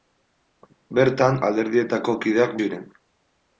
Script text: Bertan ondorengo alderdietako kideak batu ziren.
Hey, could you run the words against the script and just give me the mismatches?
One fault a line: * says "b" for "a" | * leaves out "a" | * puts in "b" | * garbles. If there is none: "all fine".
* leaves out "ondorengo"
* leaves out "batu"